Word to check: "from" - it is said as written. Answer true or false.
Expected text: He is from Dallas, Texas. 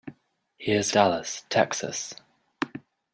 false